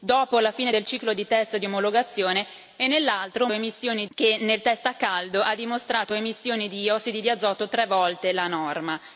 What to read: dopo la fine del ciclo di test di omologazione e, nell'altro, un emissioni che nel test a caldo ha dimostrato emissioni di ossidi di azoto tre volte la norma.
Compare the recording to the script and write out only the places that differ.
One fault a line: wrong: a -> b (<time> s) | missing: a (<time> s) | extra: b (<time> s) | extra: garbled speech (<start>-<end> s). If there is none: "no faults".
no faults